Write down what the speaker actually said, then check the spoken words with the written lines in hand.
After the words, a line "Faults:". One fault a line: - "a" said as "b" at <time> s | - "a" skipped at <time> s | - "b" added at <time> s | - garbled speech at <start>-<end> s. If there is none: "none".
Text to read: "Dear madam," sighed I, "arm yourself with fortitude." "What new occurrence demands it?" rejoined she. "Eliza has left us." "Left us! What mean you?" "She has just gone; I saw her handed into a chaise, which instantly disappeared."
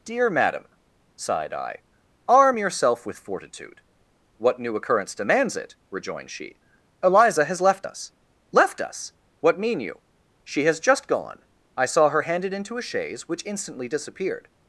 "Dear madam," sighed I, "arm yourself with fortitude." "What new occurrence demands it?" rejoined she. "Eliza has left us." "Left us! What mean you?" "She has just gone; I saw her handed into a chaise, which instantly disappeared."
Faults:
none